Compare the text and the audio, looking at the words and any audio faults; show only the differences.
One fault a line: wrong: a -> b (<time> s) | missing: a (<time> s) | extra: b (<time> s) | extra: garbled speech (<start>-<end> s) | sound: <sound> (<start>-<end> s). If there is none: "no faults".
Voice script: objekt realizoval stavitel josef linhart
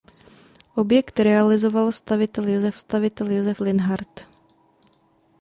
extra: stavitel josef (2.7 s)